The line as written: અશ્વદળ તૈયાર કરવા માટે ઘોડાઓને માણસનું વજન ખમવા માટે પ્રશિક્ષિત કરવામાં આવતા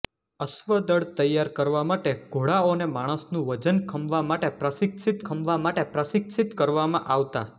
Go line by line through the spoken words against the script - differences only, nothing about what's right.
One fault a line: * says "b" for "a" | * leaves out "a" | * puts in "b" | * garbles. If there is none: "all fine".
* puts in "ખમવા માટે પ્રશિક્ષિત"